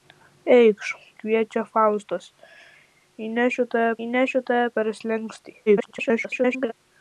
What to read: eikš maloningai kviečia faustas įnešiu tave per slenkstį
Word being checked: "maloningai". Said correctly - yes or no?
no